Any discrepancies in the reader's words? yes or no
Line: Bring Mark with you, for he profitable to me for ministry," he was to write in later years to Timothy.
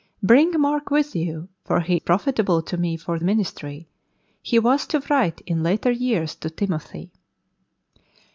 no